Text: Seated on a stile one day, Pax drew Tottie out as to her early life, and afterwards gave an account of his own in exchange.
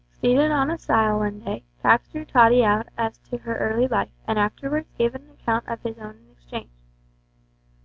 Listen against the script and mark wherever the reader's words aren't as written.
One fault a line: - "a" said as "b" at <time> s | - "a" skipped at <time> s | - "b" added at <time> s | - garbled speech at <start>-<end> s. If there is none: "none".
none